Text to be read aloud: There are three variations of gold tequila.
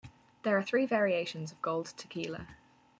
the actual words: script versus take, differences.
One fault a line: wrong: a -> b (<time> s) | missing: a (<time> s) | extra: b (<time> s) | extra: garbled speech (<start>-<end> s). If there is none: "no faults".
no faults